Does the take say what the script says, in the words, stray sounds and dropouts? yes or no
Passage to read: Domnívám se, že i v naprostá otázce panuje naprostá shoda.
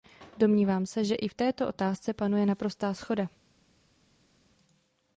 no